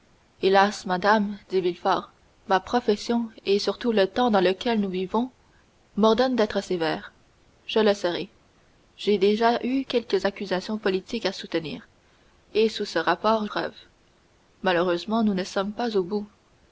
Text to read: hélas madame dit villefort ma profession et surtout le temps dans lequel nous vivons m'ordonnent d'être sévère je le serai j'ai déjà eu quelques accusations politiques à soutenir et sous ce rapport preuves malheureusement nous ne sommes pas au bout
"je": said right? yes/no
yes